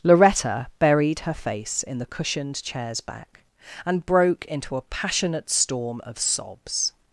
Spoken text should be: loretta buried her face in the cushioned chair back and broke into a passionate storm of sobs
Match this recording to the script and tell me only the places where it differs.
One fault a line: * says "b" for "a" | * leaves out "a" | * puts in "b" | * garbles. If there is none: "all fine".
* says "chairs" for "chair"